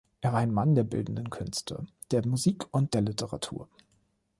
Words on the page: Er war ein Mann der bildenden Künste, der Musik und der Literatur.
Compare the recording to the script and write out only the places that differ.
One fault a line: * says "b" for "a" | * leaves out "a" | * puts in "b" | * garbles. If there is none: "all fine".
all fine